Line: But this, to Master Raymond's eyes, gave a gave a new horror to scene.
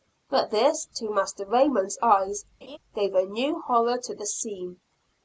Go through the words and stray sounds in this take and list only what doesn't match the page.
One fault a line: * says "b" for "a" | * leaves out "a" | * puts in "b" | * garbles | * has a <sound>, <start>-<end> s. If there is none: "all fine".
* has a laugh, 2.6-2.8 s
* leaves out "gave a"
* puts in "the"